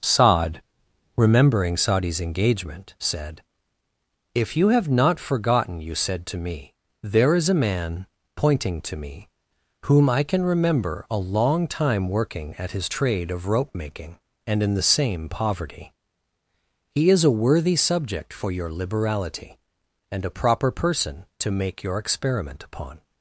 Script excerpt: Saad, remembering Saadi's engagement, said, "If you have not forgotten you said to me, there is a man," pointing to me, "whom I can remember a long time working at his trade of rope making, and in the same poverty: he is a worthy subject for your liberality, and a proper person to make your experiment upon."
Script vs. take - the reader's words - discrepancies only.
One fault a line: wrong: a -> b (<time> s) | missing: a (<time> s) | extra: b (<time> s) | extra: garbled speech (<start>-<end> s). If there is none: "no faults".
no faults